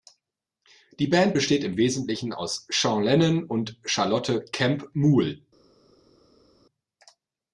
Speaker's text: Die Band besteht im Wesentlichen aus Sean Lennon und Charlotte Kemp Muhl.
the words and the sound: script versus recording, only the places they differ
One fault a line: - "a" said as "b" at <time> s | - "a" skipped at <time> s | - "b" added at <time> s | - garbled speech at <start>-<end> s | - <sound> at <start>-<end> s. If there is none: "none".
none